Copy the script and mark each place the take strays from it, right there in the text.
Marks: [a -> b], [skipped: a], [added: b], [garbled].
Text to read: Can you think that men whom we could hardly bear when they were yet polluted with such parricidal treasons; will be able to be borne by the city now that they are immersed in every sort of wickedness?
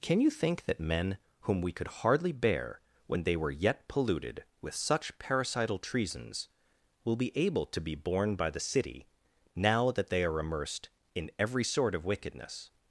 Can you think that men whom we could hardly bear when they were yet polluted with such parricidal treasons; will be able to be borne by the city now that they are immersed in every sort of wickedness?